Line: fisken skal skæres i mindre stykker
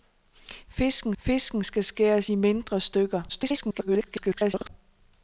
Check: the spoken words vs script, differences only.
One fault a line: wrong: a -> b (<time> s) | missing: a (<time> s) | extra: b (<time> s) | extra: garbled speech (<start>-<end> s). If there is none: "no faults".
extra: fisken (1.2 s)
extra: garbled speech (3.3-4.7 s)